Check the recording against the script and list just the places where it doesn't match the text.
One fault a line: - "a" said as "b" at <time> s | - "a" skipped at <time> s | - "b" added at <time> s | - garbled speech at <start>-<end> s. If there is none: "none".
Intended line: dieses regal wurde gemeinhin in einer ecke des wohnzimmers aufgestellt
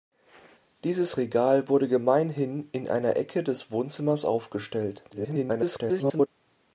- garbled speech at 5.1-6.3 s